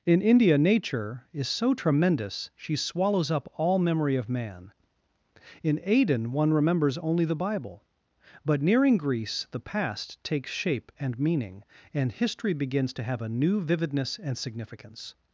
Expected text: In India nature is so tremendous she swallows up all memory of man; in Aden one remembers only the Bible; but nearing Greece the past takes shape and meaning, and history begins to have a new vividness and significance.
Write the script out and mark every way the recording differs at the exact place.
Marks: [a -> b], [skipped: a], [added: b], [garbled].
In India nature is so tremendous she swallows up all memory of man; in Aden one remembers only the Bible; but nearing Greece the past takes shape and meaning, and history begins to have a new vividness and significance.